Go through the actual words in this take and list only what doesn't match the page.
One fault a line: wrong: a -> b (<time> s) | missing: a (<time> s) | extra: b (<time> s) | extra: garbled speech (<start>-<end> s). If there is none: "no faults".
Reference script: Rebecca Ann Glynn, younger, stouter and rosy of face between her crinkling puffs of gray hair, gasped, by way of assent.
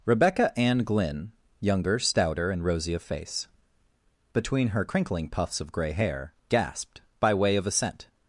no faults